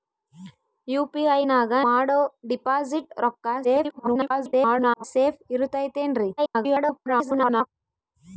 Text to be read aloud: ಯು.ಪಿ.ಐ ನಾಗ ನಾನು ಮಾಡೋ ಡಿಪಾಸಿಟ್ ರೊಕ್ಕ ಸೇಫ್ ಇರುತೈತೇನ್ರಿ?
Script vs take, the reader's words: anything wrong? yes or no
yes